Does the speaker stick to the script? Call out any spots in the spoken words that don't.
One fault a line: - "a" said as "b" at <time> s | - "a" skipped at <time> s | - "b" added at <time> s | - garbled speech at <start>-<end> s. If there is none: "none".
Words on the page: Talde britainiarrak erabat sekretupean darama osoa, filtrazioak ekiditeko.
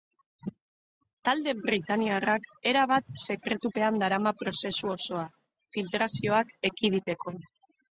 - "prozesu" added at 4.4 s